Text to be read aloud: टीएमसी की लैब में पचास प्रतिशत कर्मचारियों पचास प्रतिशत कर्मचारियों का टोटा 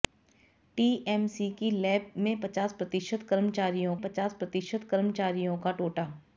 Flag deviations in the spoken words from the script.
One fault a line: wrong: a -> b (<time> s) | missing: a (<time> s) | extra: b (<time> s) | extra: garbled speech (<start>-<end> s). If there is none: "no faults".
no faults